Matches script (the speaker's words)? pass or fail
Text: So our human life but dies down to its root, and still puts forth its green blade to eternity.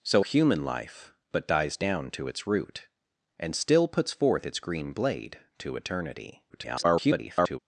fail